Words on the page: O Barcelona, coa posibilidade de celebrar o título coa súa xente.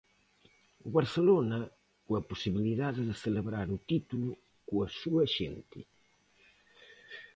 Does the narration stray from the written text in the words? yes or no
no